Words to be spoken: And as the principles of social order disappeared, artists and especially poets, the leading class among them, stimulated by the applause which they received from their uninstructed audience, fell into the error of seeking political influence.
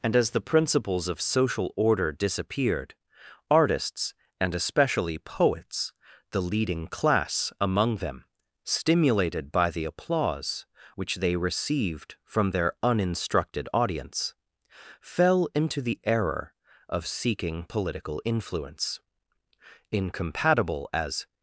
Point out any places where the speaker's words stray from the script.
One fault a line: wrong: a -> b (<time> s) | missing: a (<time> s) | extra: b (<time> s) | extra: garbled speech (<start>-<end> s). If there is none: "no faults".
extra: Incompatible as (19.9 s)